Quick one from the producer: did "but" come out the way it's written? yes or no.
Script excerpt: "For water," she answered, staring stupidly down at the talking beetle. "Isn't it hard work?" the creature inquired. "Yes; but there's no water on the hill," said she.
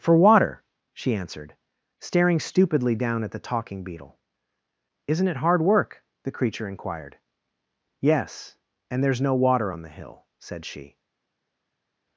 no